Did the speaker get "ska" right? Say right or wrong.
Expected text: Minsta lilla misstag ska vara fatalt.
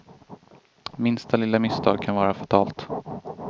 wrong